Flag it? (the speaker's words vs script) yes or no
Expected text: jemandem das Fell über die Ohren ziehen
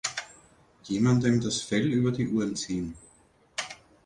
no